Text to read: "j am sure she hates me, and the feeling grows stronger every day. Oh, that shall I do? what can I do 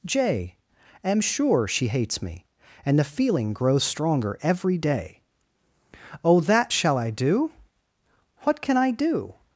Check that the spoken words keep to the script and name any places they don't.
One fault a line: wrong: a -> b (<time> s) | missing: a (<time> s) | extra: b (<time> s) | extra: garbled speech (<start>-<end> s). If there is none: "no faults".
no faults